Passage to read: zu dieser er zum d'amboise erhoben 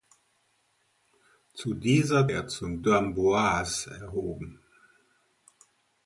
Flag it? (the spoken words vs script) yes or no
no